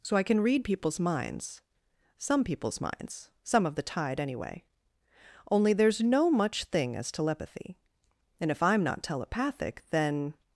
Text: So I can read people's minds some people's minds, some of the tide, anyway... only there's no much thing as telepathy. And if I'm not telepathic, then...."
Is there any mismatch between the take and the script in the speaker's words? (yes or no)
no